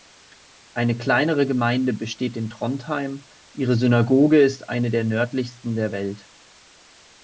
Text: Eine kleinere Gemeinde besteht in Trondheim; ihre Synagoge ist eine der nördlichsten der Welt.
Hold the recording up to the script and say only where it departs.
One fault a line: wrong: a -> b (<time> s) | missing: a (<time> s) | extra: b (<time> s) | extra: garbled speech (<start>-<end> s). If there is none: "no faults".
no faults